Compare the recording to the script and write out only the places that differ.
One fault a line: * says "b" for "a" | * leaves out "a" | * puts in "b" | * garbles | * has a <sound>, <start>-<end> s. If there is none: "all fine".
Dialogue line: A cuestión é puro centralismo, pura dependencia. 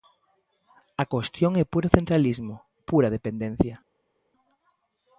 all fine